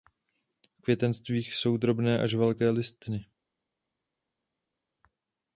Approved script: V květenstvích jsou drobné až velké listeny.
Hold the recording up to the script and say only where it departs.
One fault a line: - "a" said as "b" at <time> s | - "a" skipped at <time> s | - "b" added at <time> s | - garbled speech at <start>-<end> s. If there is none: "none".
none